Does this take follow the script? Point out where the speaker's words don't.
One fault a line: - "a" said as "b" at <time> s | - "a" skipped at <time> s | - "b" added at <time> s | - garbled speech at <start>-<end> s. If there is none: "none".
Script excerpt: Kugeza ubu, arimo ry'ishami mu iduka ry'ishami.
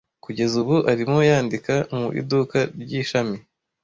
- "ry'ishami" said as "yandika" at 1.3 s